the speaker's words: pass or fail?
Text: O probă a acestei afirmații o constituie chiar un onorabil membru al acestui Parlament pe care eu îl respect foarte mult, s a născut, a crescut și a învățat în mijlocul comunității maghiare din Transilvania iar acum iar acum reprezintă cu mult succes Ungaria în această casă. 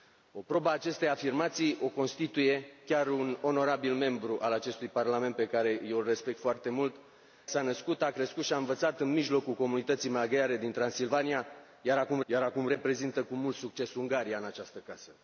pass